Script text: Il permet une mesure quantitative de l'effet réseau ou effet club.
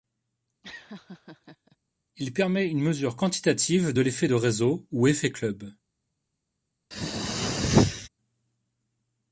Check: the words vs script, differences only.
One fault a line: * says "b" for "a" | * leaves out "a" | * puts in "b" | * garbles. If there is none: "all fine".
* puts in "de"